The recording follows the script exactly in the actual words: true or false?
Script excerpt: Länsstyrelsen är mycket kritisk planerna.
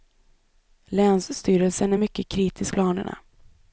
true